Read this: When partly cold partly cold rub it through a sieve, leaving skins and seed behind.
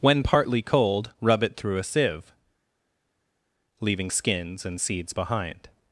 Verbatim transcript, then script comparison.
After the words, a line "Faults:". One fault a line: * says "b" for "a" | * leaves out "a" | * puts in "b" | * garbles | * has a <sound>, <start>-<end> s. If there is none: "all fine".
When partly cold rub it through a sieve, leaving skins and seeds behind.
Faults:
* leaves out "partly cold"
* says "seeds" for "seed"